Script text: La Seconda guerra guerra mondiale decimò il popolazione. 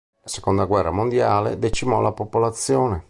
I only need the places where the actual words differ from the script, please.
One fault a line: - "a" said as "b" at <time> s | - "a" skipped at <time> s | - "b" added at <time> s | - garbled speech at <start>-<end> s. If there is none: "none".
- "guerra" skipped at 0.9 s
- "il" said as "la" at 2.0 s